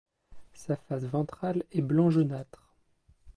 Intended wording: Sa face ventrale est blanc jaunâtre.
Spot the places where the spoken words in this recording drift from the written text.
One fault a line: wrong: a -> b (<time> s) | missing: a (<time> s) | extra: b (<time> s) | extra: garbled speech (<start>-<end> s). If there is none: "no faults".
no faults